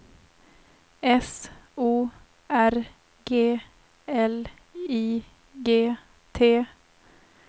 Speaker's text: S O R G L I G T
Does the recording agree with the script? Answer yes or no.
yes